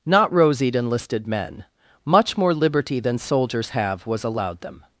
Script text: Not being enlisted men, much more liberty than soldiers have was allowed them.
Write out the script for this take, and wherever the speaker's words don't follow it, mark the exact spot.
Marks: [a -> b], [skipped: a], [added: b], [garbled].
Not [being -> rosied] enlisted men, much more liberty than soldiers have was allowed them.